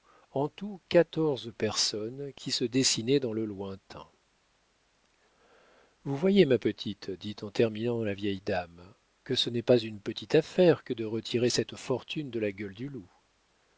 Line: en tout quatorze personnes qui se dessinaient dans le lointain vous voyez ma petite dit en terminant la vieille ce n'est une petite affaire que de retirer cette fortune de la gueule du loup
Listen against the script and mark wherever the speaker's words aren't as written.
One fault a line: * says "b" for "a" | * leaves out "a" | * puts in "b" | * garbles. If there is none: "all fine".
* puts in "dame que"
* puts in "pas"